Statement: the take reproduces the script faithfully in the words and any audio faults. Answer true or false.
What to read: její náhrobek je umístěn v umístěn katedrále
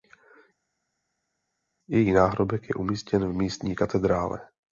false